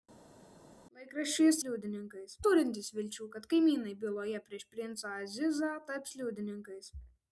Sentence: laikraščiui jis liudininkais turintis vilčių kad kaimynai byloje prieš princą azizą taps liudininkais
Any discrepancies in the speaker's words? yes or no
no